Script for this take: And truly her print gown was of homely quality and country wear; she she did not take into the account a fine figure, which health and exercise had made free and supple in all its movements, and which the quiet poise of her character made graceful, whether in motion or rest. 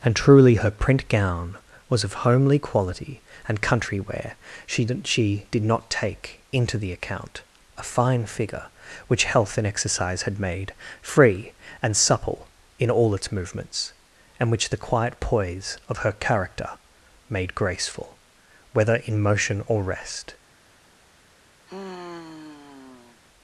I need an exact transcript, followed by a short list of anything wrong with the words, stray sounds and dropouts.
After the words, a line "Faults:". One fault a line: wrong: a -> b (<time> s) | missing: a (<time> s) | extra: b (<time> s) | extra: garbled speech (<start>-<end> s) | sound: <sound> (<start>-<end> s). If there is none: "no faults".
And truly her print gown was of homely quality and country wear; she she did not take into the account a fine figure, which health and exercise had made free and supple in all its movements, and which the quiet poise of her character made graceful, whether in motion or rest.
Faults:
sound: sigh (21.7-23.2 s)